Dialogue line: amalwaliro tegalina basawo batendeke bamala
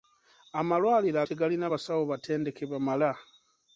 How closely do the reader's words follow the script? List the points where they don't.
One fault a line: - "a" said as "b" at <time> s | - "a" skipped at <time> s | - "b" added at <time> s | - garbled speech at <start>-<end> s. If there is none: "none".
none